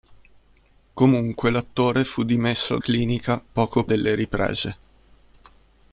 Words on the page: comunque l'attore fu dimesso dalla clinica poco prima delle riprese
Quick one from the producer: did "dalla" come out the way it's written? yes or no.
no